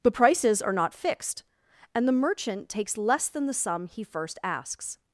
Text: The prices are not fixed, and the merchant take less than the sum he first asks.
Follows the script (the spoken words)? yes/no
no